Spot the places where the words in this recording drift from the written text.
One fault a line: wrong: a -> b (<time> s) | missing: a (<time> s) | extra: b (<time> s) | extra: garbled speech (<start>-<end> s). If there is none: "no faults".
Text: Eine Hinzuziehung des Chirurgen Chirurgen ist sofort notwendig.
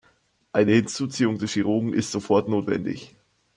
missing: Chirurgen (1.9 s)